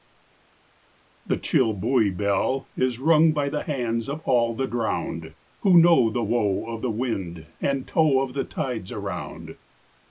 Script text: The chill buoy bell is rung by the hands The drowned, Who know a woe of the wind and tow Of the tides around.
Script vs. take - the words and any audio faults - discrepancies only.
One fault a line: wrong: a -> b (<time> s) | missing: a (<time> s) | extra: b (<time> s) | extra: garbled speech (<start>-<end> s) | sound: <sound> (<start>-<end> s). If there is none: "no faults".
extra: Of all (4.1 s)
wrong: a -> the (6.1 s)